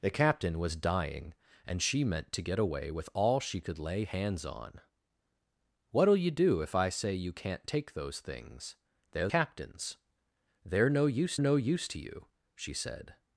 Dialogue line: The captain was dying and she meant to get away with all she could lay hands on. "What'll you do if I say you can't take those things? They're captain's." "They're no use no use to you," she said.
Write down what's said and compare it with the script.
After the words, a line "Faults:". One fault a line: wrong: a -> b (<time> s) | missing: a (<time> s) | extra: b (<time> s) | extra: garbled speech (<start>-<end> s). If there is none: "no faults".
The captain was dying and she meant to get away with all she could lay hands on. "What'll you do if I say you can't take those things? They're captain's." "They're no use no use to you," she said.
Faults:
no faults